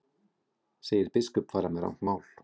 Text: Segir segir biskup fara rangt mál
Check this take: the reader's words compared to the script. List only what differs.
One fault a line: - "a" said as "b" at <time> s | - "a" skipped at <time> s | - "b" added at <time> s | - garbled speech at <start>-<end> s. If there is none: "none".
- "segir" skipped at 1.1 s
- "með" added at 1.8 s